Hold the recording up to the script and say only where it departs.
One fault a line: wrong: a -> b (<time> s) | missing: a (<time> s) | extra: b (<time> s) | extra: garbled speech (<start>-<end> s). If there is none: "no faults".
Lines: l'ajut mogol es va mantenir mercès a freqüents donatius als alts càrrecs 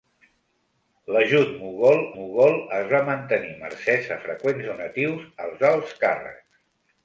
extra: mogol (2.1 s)